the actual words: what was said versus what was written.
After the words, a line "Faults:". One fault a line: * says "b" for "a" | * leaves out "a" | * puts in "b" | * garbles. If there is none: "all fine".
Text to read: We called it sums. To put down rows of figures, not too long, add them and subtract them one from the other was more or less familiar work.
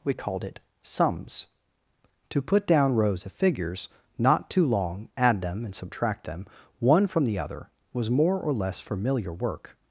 We called it sums. To put down rows of figures, not too long, add them and subtract them one from the other was more or less familiar work.
Faults:
all fine